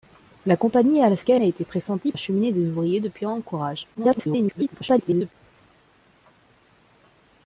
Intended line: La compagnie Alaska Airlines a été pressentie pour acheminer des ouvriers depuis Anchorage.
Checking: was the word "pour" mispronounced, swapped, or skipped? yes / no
yes